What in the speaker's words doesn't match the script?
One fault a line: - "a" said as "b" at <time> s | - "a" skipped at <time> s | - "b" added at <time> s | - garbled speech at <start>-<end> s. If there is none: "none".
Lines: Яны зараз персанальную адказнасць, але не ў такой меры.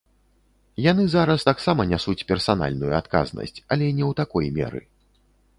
- "таксама нясуць" added at 1.5 s